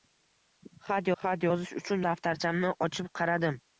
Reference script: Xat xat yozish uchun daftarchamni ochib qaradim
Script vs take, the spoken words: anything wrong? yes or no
no